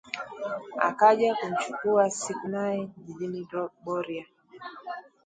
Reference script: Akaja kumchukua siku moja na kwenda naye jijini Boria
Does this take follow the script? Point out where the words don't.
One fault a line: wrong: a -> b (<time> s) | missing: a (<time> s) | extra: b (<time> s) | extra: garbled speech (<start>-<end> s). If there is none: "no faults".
missing: moja na kwenda (2.5 s)